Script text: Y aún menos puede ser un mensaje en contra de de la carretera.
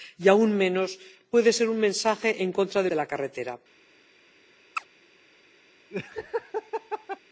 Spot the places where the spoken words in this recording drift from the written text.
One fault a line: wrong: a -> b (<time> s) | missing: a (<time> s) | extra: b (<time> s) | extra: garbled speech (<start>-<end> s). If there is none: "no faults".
no faults